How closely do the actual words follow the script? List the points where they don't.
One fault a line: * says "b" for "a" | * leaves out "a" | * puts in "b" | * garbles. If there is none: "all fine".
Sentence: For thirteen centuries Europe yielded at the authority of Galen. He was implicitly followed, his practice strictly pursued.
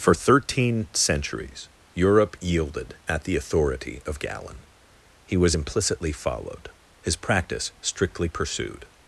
all fine